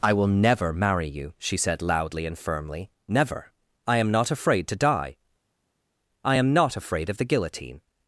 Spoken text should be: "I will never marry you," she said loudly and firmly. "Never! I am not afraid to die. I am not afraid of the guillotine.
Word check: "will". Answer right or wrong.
right